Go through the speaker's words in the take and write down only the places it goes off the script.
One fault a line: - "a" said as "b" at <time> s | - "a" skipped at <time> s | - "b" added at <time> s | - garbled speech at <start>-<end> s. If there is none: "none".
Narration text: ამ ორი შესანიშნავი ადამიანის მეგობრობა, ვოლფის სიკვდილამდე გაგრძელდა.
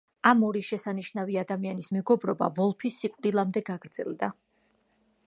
none